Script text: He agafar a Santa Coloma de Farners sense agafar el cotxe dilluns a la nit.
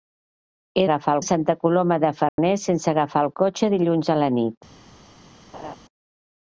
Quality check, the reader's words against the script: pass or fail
pass